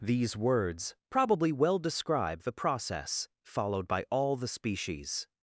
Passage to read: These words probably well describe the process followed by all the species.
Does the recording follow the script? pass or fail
pass